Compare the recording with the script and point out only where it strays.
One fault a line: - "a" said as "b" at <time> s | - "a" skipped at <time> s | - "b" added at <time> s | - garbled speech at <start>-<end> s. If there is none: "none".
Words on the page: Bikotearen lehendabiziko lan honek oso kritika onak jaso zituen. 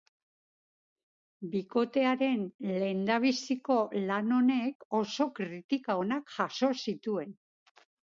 none